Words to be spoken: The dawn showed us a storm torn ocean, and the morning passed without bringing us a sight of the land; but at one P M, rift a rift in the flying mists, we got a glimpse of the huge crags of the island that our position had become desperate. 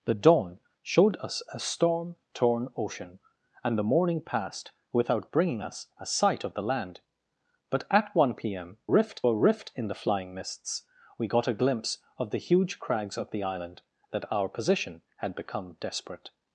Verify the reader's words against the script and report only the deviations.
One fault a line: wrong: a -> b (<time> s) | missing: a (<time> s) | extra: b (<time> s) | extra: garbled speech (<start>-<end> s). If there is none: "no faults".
no faults